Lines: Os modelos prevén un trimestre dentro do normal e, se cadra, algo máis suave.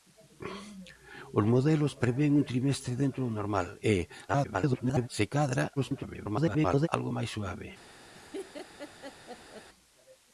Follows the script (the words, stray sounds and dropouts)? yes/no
no